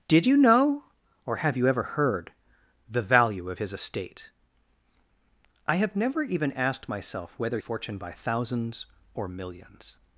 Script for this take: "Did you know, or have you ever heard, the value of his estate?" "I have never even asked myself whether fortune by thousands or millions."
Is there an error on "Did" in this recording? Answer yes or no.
no